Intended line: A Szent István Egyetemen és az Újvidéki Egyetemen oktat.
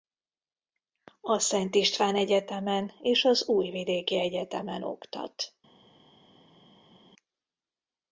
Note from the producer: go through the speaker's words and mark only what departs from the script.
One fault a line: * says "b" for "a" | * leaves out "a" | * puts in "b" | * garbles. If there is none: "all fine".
all fine